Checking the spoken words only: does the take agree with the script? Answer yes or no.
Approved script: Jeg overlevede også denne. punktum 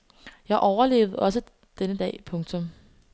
no